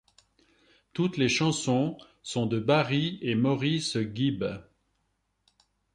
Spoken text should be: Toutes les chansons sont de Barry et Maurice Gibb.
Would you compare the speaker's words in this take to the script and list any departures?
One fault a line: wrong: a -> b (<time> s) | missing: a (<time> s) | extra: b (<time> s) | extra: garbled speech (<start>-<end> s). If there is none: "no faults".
no faults